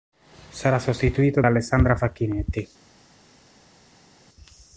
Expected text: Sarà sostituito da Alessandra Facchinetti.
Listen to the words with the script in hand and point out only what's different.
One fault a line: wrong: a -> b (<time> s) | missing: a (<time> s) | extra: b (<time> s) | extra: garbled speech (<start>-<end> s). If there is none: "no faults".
no faults